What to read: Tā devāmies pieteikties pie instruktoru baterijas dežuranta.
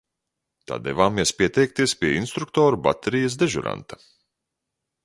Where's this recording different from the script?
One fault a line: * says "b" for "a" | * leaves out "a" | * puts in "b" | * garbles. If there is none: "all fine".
all fine